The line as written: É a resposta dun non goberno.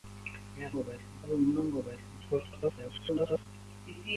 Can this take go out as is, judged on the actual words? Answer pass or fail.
fail